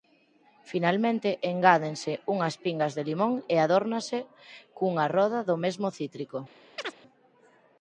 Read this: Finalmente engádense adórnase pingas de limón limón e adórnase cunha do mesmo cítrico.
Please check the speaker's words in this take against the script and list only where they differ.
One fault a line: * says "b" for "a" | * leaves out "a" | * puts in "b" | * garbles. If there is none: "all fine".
* says "unhas" for "adórnase"
* leaves out "limón"
* puts in "roda"